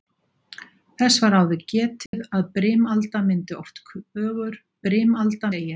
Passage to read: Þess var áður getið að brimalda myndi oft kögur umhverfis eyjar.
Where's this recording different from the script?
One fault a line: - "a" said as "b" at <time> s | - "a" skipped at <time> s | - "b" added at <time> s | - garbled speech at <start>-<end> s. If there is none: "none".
- "umhverfis" said as "brimalda" at 4.9 s